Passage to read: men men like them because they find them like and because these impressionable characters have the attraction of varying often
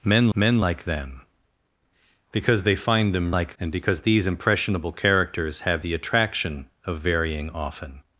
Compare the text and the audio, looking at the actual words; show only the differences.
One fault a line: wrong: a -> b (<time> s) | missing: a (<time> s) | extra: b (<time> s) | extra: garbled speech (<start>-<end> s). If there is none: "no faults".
no faults